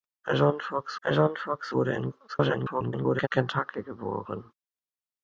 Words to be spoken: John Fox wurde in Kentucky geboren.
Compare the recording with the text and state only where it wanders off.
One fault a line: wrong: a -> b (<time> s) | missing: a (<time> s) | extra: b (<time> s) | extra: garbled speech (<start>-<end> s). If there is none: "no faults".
extra: john Fox (1.0 s)
extra: garbled speech (2.3-3.3 s)